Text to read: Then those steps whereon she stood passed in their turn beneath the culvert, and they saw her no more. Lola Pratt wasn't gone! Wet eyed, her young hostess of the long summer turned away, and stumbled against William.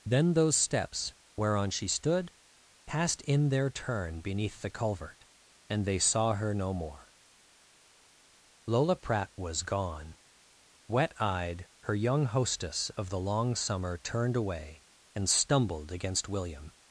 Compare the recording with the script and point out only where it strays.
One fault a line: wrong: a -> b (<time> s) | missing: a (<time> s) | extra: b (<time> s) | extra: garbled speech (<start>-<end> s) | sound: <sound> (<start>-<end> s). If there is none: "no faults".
wrong: wasn't -> was (9.4 s)